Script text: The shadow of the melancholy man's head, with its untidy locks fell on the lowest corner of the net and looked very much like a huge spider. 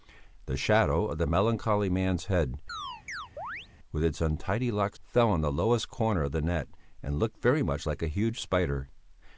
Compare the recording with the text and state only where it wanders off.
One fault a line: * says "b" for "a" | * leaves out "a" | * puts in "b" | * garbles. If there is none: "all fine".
all fine